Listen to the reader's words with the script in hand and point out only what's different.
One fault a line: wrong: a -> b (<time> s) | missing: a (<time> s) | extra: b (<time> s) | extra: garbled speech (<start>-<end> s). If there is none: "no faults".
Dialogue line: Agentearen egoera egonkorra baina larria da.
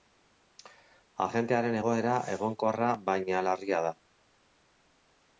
no faults